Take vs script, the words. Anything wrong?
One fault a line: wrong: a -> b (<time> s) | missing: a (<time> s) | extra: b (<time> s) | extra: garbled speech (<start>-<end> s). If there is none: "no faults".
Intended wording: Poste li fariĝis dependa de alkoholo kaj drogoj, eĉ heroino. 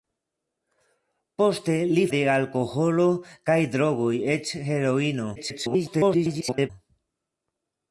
missing: fariĝis dependa (2.0 s)
extra: garbled speech (5.4-6.7 s)